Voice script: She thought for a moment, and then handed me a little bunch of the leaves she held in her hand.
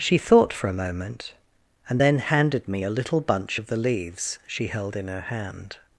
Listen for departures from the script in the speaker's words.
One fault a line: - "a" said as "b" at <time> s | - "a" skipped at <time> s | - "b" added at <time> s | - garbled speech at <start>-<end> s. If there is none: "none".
none